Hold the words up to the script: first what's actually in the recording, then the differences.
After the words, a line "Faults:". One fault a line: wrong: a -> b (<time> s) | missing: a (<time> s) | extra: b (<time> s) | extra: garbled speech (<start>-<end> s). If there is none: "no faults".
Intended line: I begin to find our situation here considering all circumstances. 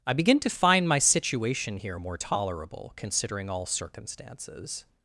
I begin to find my situation here more tolerable, considering all circumstances.
Faults:
wrong: our -> my (0.9 s)
extra: more tolerable (2.0 s)